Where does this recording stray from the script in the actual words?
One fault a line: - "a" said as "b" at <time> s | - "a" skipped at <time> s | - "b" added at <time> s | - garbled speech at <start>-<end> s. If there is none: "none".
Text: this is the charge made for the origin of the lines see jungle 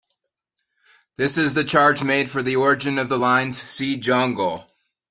none